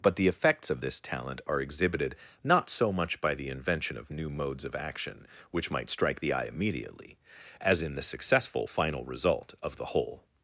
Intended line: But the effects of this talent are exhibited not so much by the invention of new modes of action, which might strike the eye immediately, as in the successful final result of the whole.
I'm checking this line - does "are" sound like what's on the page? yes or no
yes